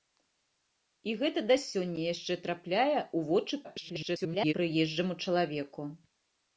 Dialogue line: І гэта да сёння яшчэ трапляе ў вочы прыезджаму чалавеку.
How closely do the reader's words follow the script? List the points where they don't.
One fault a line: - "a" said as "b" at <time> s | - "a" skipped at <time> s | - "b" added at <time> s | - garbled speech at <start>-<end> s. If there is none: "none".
- garbled speech at 3.6-4.5 s